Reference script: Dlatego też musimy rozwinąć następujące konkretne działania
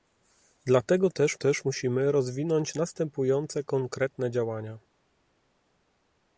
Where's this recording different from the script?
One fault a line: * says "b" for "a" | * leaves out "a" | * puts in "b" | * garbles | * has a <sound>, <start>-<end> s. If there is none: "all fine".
* puts in "też"